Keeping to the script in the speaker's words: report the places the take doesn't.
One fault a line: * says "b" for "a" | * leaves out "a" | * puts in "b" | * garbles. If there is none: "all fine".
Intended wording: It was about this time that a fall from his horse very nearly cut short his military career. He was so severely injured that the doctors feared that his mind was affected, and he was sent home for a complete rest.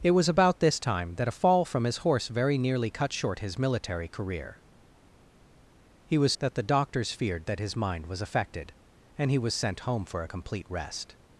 * leaves out "so severely injured"